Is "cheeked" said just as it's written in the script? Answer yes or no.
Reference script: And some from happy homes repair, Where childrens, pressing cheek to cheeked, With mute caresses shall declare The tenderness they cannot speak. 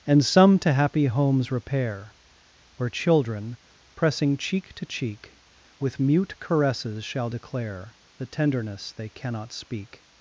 no